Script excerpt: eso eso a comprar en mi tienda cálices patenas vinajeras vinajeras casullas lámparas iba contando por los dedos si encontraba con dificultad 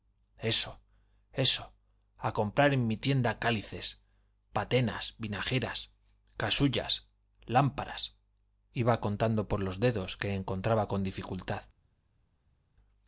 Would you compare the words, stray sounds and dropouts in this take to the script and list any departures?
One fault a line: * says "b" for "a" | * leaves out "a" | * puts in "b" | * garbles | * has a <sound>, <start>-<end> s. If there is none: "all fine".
* leaves out "vinajeras"
* says "que" for "si"